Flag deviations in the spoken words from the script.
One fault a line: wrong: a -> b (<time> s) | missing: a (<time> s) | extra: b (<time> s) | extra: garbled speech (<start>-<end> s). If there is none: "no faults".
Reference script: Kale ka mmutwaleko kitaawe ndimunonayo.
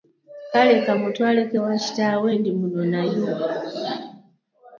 extra: ewa (1.6 s)